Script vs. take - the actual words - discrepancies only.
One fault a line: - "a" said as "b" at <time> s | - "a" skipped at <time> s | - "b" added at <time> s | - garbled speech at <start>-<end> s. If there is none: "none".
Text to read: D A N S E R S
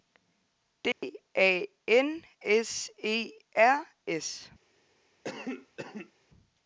none